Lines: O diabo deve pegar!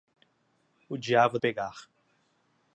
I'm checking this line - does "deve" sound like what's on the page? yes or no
no